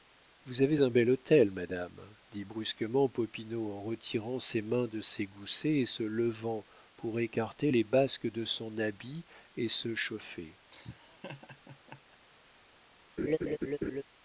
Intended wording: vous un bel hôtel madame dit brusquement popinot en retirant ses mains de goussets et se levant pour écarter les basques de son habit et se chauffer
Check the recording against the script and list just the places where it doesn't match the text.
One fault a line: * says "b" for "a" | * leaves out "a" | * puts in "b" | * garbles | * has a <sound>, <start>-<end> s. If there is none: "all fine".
* puts in "avez"
* puts in "ses"
* has a laugh, 10.7-12.2 s
* has a laugh, 13.2-14.0 s